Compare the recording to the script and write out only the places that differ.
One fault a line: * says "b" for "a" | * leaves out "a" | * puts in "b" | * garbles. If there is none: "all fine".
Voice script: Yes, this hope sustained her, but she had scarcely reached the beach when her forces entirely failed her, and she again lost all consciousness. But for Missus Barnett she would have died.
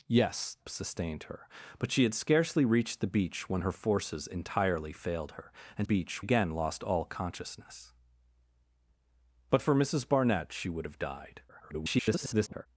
* leaves out "this hope"
* says "beach" for "she"
* garbles